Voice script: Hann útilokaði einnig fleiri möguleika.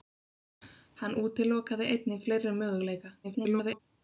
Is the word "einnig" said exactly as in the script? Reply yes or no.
yes